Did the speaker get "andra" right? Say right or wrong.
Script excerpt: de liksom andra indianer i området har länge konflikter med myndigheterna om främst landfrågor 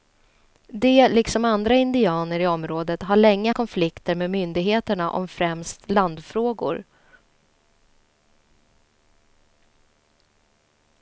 right